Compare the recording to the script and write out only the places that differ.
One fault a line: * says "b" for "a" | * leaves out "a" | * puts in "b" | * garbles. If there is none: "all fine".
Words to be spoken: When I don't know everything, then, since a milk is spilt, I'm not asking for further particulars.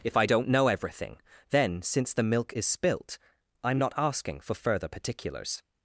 * says "If" for "When"
* says "the" for "a"